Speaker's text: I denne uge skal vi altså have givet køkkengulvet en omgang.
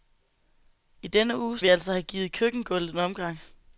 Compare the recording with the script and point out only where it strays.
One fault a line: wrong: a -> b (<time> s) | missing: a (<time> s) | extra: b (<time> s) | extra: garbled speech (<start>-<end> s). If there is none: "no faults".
missing: skal (1.6 s)